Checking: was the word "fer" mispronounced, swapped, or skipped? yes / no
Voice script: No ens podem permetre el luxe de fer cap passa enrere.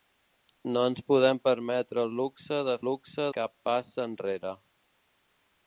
yes